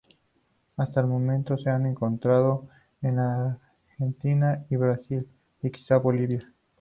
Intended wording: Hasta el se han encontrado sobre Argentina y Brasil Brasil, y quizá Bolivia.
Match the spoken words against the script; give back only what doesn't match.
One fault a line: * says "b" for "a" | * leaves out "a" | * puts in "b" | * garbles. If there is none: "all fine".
* puts in "momento"
* says "en" for "sobre"
* leaves out "Brasil"